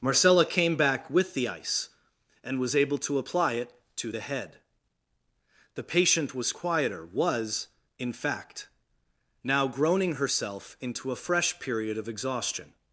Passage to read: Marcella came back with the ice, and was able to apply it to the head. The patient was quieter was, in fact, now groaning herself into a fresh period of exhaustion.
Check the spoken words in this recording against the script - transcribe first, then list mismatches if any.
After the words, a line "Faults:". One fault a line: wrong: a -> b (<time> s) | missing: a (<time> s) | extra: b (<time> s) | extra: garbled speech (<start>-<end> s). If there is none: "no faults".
Marcella came back with the ice, and was able to apply it to the head. The patient was quieter was, in fact, now groaning herself into a fresh period of exhaustion.
Faults:
no faults